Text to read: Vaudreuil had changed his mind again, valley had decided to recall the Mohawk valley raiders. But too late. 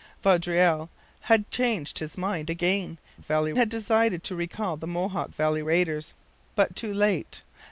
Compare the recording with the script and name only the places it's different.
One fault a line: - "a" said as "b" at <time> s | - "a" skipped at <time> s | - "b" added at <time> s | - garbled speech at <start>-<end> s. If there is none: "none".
none